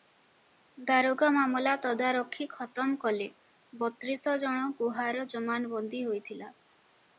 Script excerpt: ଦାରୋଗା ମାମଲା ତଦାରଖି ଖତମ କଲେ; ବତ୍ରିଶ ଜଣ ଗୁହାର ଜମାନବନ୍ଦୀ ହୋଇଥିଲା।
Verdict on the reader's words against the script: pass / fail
pass